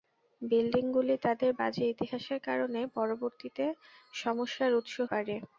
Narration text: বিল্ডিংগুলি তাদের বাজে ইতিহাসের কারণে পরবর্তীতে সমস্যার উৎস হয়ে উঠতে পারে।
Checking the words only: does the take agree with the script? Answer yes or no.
no